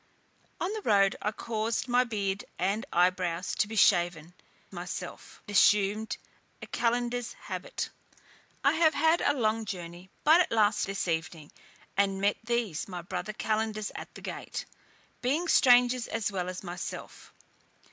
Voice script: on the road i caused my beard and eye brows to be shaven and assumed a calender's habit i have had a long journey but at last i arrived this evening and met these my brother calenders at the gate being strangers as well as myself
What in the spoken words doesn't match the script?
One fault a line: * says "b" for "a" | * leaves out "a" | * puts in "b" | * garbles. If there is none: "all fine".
* says "myself" for "and"
* leaves out "i arrived"